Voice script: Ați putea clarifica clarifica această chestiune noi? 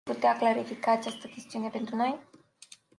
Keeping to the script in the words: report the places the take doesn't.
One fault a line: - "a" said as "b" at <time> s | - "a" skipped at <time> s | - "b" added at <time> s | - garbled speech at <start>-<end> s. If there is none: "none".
- "clarifica" skipped at 0.9 s
- "pentru" added at 1.7 s